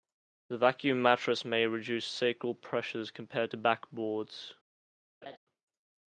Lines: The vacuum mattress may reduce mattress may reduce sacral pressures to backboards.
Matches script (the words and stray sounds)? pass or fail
fail